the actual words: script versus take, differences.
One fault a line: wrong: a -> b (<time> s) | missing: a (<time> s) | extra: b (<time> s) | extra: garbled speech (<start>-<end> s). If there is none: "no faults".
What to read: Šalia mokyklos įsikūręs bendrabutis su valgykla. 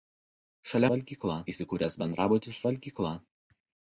wrong: mokyklos -> valgykla (0.9 s)
missing: su (2.6 s)